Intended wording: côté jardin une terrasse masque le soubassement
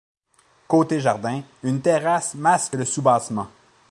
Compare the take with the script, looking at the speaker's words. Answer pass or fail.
pass